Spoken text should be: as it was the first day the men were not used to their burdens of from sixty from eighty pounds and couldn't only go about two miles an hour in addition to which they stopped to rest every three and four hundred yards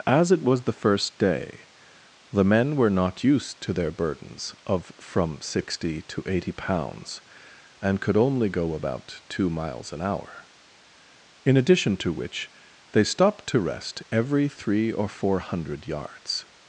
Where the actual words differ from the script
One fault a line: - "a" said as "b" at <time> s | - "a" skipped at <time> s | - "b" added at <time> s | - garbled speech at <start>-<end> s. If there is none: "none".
- "from" said as "to" at 6.0 s
- "couldn't" said as "could" at 8.0 s
- "and" said as "or" at 14.9 s